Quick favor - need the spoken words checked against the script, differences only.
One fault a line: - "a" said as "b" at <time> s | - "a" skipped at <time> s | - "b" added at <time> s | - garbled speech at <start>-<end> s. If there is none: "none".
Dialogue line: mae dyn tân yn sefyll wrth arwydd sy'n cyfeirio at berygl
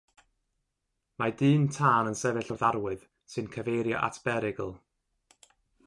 none